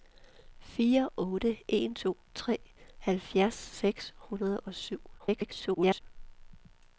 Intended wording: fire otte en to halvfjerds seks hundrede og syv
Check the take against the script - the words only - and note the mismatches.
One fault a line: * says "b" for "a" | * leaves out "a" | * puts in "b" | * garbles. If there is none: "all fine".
* garbles